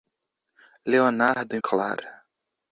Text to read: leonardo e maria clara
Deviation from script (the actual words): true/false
true